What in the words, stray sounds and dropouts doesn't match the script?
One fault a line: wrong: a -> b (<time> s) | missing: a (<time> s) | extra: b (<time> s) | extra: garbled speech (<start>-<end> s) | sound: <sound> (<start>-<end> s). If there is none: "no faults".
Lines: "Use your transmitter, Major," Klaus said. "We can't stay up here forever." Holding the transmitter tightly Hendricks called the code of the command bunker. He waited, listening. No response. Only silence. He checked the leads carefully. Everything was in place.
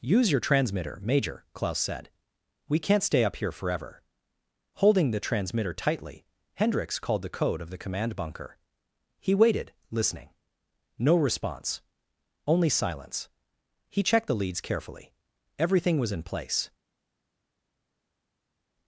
no faults